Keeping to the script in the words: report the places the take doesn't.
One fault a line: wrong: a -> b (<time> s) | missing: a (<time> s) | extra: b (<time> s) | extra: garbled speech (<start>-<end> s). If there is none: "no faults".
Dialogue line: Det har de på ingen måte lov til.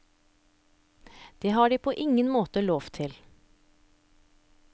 no faults